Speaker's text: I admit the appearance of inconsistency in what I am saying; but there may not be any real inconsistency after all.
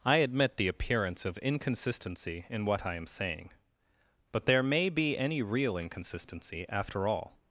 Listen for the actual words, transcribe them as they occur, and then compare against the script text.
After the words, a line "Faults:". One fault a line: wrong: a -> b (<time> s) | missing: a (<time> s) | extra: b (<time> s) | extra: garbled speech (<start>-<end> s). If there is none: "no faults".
I admit the appearance of inconsistency in what I am saying; but there may be any real inconsistency after all.
Faults:
missing: not (4.9 s)